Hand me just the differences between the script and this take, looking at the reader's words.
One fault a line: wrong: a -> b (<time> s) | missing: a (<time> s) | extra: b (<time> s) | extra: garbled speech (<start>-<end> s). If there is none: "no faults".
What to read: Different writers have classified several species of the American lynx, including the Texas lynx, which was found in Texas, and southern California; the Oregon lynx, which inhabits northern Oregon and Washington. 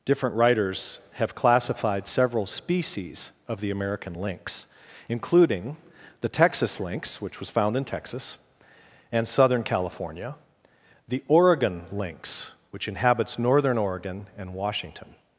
no faults